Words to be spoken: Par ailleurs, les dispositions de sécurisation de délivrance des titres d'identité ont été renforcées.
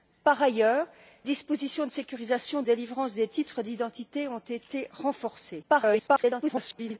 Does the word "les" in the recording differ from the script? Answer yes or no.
yes